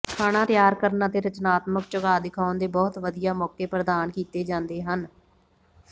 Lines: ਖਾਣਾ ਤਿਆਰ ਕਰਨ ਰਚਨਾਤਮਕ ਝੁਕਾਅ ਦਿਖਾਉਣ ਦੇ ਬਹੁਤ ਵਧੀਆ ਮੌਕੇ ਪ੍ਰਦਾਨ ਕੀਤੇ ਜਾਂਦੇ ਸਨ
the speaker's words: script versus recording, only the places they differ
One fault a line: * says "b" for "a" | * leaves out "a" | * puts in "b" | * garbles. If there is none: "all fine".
* puts in "ਅਤੇ"
* says "ਹਨ" for "ਸਨ"